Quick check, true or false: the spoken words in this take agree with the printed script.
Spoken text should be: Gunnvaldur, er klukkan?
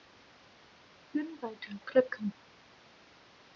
true